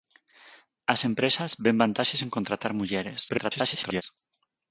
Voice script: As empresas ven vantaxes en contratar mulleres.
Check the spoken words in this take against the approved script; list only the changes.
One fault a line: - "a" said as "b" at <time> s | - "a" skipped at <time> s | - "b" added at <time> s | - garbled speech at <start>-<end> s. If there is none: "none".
- garbled speech at 3.3-4.0 s